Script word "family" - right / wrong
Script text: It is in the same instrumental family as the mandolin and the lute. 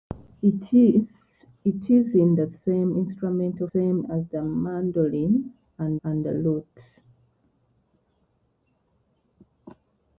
wrong